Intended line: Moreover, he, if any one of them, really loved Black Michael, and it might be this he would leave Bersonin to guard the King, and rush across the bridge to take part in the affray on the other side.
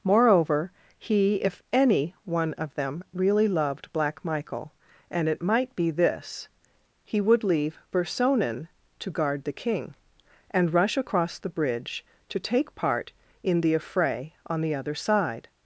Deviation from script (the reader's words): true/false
false